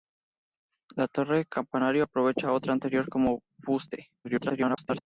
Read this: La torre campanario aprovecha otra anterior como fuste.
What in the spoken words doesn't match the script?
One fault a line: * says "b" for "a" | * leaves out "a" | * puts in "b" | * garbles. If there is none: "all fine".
* garbles